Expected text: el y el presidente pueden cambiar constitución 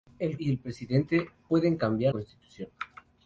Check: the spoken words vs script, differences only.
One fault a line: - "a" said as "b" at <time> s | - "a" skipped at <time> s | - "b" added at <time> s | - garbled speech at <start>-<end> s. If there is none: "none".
none